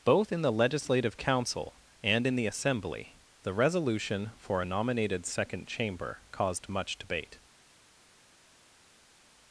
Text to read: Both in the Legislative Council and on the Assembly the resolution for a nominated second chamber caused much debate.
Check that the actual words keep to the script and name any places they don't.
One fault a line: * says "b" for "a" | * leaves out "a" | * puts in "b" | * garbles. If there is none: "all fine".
* says "in" for "on"